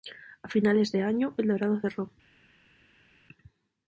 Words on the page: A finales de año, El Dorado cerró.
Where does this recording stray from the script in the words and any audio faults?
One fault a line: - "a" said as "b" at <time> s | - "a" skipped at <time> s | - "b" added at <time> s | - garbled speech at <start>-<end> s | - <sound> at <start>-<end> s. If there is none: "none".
none